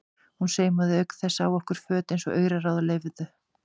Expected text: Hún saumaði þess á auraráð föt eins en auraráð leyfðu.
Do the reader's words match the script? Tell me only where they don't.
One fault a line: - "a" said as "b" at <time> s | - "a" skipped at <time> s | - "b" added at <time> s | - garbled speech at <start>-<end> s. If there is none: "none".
- "auk" added at 1.0 s
- "auraráð" said as "okkur" at 1.6 s
- "en" said as "og" at 2.3 s